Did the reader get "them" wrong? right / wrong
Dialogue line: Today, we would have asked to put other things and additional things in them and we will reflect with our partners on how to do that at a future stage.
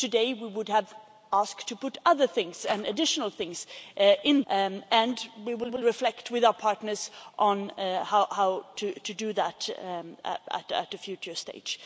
wrong